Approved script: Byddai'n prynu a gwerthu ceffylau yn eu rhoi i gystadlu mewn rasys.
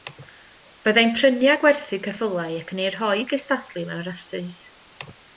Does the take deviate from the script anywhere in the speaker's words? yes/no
yes